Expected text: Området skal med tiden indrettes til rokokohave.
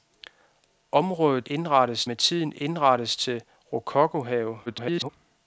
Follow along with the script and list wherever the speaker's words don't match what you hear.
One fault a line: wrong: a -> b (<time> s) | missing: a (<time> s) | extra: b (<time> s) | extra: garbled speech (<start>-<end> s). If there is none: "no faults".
wrong: skal -> indrettes (1.4 s)
extra: garbled speech (4.7-5.1 s)